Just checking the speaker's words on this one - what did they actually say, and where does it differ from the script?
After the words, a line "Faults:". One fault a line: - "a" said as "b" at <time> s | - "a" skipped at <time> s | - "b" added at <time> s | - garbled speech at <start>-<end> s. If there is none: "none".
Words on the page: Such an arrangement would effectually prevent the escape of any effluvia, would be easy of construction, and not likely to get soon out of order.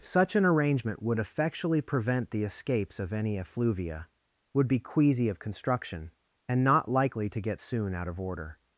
Such an arrangement would effectually prevent the escapes of any effluvia, would be queasy of construction, and not likely to get soon out of order.
Faults:
- "escape" said as "escapes" at 2.4 s
- "easy" said as "queasy" at 4.8 s